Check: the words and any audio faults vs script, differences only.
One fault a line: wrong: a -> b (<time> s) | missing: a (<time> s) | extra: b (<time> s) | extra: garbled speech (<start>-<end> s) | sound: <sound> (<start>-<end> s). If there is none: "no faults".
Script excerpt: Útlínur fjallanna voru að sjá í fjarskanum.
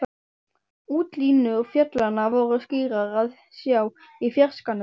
extra: skýrar (2.6 s)